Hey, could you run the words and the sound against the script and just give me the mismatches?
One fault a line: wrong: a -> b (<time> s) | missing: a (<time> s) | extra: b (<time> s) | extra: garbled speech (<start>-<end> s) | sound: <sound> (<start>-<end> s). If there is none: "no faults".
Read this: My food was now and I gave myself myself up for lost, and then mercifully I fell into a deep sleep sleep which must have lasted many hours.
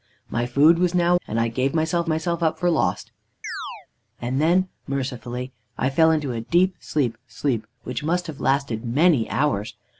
sound: chirp (3.4-3.9 s)